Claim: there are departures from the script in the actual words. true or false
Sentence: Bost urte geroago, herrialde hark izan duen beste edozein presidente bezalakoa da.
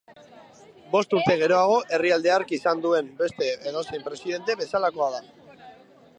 false